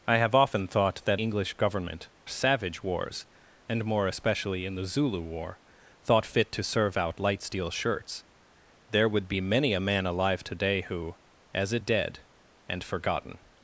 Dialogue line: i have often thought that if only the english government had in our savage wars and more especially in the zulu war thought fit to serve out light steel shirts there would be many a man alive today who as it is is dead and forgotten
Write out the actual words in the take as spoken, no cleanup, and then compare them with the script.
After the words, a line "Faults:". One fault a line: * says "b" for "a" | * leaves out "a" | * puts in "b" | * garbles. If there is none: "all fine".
i have often thought that english government savage wars and more especially in the zulu war thought fit to serve out light steel shirts there would be many a man alive today who as it dead and forgotten
Faults:
* leaves out "if only the"
* leaves out "had in our"
* leaves out "is is"